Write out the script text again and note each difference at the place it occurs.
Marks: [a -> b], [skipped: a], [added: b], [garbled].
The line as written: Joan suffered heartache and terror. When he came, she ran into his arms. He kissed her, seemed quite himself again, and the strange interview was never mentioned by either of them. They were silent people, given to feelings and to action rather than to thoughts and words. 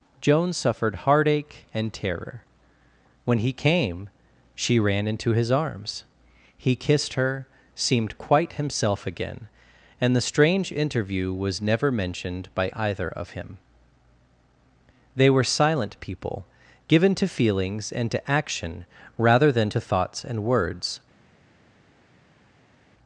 Joan suffered heartache and terror. When he came, she ran into his arms. He kissed her, seemed quite himself again, and the strange interview was never mentioned by either of [them. -> him] They were silent people, given to feelings and to action rather than to thoughts and words.